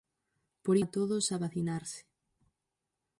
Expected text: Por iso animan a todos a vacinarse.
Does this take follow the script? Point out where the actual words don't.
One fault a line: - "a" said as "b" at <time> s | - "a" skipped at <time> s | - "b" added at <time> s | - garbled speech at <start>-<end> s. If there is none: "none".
- "iso animan" skipped at 0.8 s